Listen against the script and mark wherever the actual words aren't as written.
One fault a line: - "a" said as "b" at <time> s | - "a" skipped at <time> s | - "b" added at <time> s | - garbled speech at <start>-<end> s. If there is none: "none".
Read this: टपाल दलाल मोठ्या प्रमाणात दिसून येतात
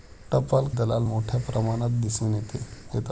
none